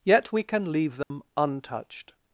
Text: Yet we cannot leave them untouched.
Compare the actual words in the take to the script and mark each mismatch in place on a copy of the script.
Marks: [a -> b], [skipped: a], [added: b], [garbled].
Yet we [cannot -> can] leave them untouched.